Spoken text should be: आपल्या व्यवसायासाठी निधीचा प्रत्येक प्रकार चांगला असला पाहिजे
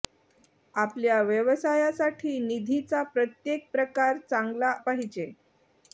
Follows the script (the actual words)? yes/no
no